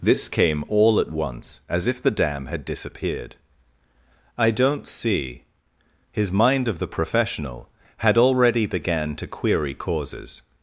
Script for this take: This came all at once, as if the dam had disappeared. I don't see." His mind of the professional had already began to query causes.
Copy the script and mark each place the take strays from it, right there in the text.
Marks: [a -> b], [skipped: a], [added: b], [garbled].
This came all at once, as if the dam had disappeared. I don't see." His mind of the professional had already began to query causes.